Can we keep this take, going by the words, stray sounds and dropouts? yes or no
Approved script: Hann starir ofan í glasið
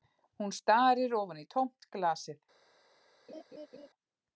no